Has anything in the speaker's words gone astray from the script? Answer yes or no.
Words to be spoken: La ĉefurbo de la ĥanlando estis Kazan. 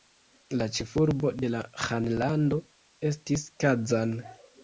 no